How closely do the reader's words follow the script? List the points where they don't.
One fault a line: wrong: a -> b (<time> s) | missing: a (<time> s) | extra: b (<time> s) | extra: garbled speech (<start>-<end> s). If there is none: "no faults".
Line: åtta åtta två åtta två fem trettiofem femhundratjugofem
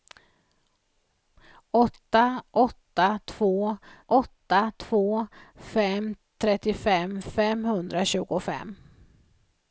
no faults